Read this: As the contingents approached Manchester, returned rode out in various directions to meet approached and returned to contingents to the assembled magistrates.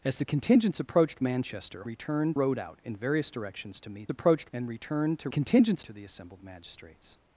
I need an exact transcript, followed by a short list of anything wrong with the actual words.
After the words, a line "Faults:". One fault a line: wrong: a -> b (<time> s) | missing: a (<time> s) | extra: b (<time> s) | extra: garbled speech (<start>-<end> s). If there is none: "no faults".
As the contingents approached Manchester, returned rode out in various directions to meet approached and returned to contingents to the assembled magistrates.
Faults:
no faults